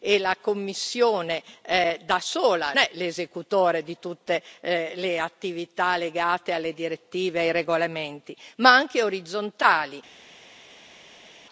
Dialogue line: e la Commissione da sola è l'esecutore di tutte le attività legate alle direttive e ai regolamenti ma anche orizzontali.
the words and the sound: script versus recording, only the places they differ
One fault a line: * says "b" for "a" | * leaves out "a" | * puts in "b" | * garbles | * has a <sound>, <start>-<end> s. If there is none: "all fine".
all fine